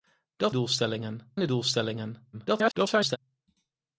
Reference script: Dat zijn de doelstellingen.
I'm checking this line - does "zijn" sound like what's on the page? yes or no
no